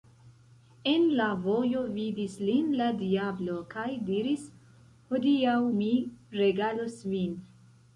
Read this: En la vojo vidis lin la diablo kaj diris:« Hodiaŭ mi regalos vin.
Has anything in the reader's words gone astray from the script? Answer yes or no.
no